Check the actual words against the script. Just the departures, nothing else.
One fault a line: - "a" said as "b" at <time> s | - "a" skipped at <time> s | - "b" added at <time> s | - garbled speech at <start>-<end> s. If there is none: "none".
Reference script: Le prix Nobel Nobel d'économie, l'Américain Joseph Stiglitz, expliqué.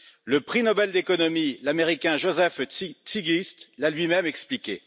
- "Nobel" skipped at 0.9 s
- "l'a lui même" added at 3.8 s